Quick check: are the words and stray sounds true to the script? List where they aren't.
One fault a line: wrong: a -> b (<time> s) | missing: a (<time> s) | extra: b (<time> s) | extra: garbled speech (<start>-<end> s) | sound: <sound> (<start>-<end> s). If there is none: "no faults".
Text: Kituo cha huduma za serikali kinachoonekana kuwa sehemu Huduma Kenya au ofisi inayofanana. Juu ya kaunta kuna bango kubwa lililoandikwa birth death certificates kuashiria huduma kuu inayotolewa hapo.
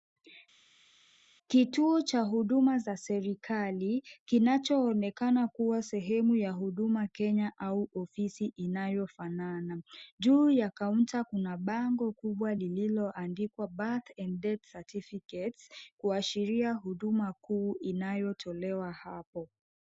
extra: ya (6.3 s)
extra: and (14.2 s)